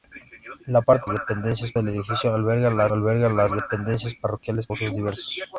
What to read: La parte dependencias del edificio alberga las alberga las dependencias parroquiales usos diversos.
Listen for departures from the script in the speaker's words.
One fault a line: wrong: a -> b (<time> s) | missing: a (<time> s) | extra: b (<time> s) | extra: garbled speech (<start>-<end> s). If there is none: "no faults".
no faults